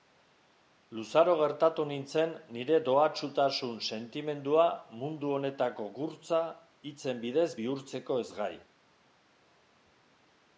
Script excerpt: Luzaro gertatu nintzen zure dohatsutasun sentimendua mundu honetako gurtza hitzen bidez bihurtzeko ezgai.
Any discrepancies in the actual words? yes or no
yes